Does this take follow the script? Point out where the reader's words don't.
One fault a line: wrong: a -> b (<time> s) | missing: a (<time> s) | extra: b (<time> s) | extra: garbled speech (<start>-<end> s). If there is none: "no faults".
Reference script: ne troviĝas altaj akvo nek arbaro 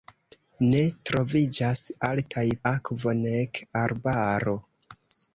no faults